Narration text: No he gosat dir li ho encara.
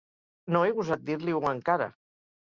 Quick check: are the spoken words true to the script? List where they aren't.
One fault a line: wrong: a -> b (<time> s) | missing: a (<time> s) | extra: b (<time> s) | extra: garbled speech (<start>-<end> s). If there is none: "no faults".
no faults